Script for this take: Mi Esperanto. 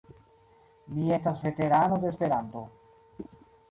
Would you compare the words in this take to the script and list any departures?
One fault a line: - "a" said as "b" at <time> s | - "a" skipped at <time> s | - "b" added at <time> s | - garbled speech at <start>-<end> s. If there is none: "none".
- "estas veterano de" added at 1.1 s